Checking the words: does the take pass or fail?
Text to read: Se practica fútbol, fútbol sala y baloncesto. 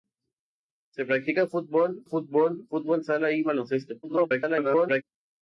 fail